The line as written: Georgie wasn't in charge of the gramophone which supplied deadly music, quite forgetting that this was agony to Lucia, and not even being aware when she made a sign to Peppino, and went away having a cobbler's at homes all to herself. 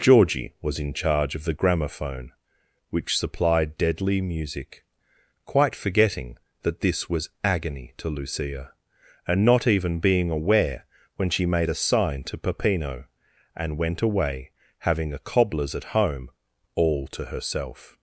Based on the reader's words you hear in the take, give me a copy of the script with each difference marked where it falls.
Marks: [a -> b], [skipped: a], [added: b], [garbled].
Georgie [wasn't -> was] in charge of the gramophone which supplied deadly music, quite forgetting that this was agony to Lucia, and not even being aware when she made a sign to Peppino, and went away having a cobbler's at [homes -> home] all to herself.